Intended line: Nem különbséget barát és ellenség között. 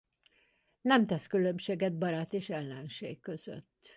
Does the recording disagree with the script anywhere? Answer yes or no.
yes